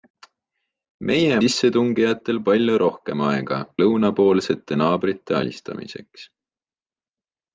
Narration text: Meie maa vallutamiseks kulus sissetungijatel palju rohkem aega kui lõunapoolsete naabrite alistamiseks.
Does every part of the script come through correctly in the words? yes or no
no